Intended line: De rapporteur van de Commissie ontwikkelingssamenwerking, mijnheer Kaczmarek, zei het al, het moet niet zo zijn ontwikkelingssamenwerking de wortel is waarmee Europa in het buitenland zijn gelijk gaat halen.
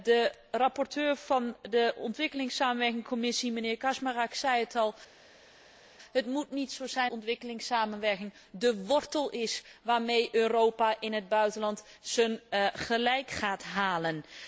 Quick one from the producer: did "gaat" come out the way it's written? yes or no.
yes